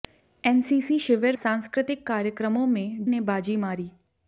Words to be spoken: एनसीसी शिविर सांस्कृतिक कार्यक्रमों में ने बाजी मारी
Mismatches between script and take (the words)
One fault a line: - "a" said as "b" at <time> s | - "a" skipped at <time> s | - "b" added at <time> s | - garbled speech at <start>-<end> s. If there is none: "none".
none